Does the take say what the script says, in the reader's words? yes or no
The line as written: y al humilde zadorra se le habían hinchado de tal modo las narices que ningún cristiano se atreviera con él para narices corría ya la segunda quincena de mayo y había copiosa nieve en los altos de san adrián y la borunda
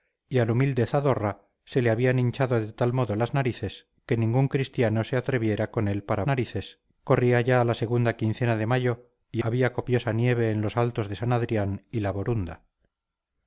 yes